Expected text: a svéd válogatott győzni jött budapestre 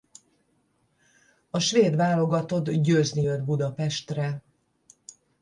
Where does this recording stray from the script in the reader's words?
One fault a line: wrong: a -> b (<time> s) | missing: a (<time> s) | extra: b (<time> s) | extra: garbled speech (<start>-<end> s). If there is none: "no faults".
no faults